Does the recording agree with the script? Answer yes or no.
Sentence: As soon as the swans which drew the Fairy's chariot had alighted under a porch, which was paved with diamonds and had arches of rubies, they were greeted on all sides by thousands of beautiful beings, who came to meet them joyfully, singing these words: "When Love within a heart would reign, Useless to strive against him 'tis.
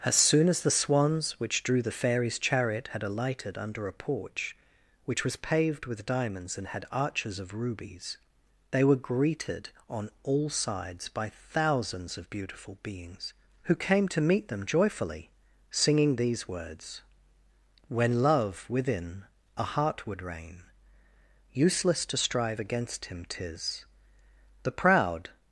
no